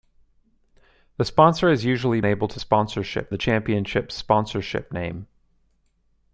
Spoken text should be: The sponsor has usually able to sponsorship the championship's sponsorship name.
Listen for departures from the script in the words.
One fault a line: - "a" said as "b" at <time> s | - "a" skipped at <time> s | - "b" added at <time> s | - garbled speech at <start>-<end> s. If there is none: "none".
none